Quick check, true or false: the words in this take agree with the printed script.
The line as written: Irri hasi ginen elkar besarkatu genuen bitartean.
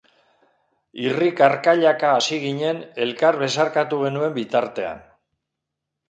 false